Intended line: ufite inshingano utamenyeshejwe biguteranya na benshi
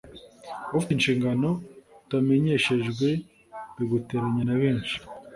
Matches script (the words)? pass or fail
pass